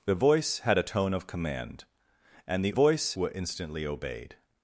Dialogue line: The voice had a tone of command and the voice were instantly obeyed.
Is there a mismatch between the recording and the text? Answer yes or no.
no